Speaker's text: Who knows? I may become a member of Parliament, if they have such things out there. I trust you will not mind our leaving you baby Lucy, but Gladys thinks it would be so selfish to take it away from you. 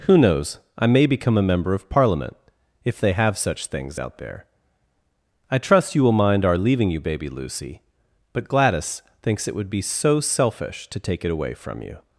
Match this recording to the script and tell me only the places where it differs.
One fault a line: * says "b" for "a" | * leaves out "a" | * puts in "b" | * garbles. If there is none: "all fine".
* leaves out "not"